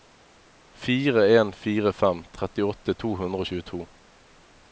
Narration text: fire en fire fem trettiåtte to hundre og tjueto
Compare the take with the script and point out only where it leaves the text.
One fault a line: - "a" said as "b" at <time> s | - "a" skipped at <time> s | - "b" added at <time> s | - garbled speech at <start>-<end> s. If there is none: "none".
none